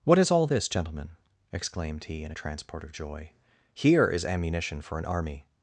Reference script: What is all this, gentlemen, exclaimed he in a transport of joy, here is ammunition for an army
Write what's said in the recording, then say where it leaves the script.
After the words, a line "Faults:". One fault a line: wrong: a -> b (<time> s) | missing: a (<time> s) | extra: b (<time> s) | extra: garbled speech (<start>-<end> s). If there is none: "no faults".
What is all this, gentlemen, exclaimed he in a transport of joy, here is ammunition for an army
Faults:
no faults